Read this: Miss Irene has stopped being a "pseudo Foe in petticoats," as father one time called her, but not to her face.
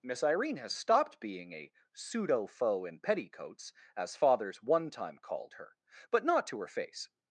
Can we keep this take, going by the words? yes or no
no